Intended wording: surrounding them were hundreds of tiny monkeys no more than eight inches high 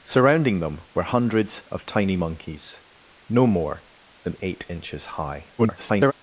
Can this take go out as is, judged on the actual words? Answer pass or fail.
fail